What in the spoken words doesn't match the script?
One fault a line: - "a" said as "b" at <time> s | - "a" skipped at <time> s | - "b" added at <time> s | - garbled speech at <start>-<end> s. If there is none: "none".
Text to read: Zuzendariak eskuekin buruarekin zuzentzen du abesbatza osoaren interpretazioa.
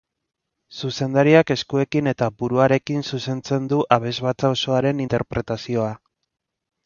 - "eta" added at 2.1 s